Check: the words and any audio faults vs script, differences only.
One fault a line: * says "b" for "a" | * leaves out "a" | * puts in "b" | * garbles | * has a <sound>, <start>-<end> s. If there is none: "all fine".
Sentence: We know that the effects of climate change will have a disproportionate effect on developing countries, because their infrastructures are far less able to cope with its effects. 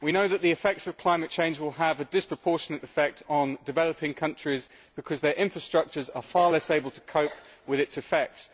all fine